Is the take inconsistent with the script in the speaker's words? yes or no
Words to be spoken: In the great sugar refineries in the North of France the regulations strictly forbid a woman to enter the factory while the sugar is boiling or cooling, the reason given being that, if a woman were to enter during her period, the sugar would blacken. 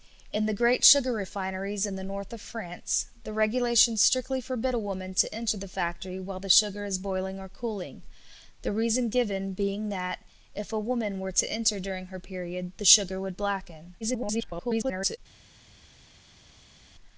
yes